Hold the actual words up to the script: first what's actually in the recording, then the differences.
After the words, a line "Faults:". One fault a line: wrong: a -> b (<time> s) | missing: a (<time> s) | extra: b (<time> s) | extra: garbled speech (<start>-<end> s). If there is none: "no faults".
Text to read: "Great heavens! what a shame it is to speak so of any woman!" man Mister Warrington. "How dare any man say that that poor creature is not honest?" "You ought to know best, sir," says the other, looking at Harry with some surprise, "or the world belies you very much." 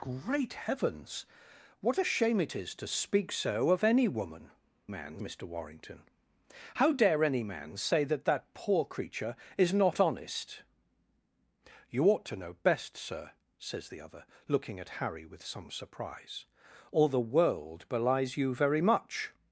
"Great heavens! what a shame it is to speak so of any woman!" man Mister Warrington. "How dare any man say that that poor creature is not honest?" "You ought to know best, sir," says the other, looking at Harry with some surprise, "or the world belies you very much."
Faults:
no faults